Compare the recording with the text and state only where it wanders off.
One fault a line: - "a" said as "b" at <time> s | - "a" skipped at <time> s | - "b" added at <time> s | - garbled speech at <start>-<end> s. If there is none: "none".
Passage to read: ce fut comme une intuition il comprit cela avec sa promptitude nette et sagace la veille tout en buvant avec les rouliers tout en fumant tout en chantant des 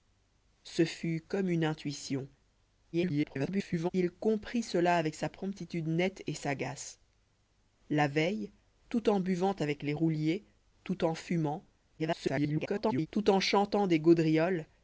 - garbled speech at 2.9-3.9 s
- garbled speech at 12.0-13.1 s